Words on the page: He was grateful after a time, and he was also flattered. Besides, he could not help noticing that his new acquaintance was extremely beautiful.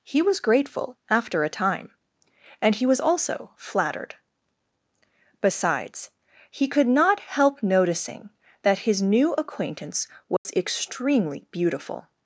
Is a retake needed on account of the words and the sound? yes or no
yes